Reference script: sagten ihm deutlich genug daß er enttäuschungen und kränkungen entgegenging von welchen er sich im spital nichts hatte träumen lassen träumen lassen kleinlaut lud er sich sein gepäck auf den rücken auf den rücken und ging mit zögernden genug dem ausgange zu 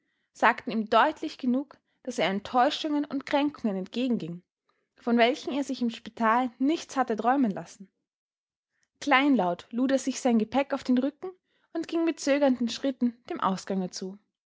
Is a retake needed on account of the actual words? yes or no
yes